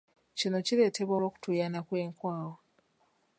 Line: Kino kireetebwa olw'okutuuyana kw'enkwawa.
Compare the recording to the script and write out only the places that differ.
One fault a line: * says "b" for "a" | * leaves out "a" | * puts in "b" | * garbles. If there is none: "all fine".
all fine